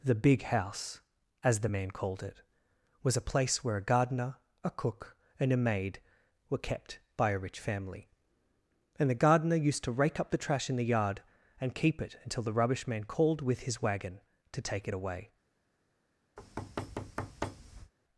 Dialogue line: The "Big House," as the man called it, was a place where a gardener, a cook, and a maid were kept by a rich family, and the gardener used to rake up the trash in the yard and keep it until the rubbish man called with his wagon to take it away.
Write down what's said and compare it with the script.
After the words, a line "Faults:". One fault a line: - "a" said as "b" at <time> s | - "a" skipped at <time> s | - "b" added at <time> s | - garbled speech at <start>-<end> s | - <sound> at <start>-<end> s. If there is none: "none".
The "Big House," as the man called it, was a place where a gardener, a cook, and a maid were kept by a rich family, and the gardener used to rake up the trash in the yard and keep it until the rubbish man called with his wagon to take it away.
Faults:
- thud at 16.4-17.9 s